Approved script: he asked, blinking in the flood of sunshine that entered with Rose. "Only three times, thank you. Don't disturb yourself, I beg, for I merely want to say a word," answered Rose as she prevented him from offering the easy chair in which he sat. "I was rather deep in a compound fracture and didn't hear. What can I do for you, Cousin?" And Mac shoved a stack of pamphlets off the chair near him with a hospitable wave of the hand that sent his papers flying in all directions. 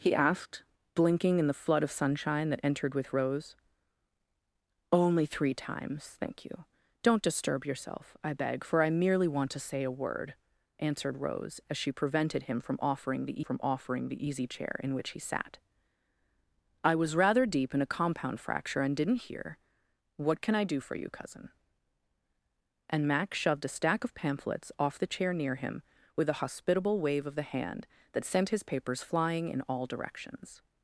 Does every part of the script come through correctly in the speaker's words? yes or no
no